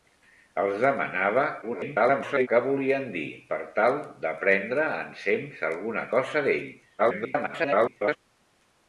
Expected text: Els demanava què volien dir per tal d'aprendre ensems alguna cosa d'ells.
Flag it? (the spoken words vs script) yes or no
yes